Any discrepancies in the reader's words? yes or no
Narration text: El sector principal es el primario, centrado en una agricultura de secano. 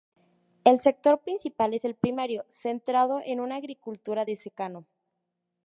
no